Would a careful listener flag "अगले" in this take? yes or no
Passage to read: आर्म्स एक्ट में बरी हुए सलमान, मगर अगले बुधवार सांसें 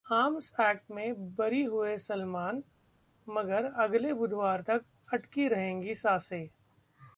no